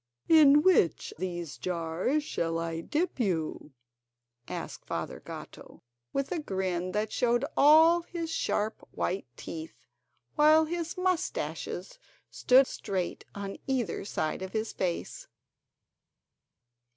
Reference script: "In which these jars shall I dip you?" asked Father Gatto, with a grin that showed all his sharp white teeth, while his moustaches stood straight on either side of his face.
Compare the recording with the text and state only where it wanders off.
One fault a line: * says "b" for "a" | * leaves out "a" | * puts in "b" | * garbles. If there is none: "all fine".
all fine